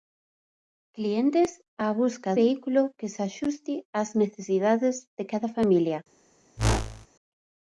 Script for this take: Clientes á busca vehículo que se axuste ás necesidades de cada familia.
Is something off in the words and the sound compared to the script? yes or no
yes